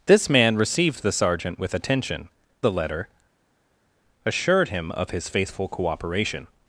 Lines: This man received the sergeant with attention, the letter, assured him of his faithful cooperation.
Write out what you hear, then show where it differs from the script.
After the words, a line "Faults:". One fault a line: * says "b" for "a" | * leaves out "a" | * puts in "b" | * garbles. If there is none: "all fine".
This man received the sergeant with attention, the letter, assured him of his faithful cooperation.
Faults:
all fine